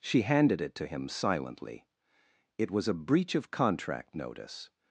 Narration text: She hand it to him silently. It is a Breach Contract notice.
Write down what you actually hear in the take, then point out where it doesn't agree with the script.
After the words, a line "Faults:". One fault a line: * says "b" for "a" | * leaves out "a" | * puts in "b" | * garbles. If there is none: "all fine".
She handed it to him silently. It was a Breach of Contract notice.
Faults:
* says "handed" for "hand"
* says "was" for "is"
* puts in "of"